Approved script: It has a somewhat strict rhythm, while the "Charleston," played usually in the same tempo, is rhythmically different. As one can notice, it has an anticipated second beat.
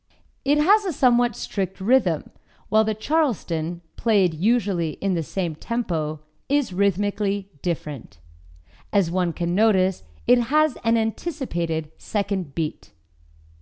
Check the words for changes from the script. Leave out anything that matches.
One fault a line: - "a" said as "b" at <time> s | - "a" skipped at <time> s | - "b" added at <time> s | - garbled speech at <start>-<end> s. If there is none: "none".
none